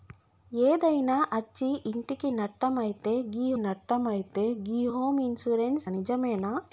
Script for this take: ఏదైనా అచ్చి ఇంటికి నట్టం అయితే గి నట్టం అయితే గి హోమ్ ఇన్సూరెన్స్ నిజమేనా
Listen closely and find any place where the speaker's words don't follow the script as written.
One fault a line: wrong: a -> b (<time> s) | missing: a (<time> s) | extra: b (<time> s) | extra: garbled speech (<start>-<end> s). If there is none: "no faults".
no faults